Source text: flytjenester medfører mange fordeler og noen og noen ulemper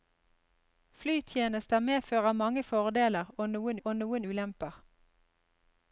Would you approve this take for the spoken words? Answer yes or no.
yes